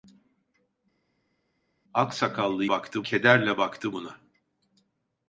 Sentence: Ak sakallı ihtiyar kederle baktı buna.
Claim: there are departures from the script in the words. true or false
true